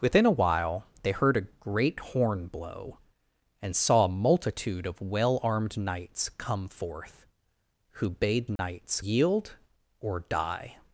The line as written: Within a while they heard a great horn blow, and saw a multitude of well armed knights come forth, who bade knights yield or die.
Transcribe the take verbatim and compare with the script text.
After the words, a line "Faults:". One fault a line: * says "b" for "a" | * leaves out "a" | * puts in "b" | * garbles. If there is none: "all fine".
Within a while they heard a great horn blow, and saw a multitude of well armed knights come forth, who bade knights yield or die.
Faults:
all fine